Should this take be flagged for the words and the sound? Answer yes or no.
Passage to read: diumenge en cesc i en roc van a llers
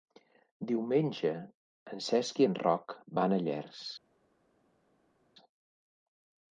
no